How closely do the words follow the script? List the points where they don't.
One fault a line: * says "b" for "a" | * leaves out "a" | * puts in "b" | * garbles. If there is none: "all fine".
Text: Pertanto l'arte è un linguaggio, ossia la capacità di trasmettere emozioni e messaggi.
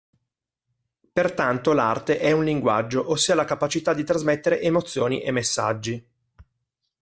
all fine